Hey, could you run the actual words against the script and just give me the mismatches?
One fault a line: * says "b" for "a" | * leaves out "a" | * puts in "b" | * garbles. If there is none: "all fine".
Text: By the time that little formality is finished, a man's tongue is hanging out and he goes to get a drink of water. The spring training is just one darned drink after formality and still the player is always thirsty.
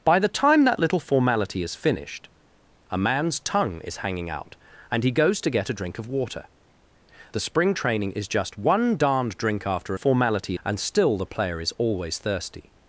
all fine